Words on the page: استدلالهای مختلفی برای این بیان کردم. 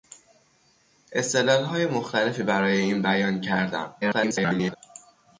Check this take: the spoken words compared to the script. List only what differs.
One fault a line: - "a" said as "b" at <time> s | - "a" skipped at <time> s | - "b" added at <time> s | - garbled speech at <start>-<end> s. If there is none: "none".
- garbled speech at 4.0-4.8 s